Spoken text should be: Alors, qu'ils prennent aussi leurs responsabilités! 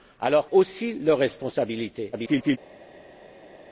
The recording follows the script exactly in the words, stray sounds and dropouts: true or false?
false